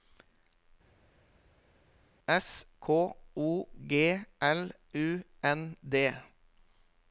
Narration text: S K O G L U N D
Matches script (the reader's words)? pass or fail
pass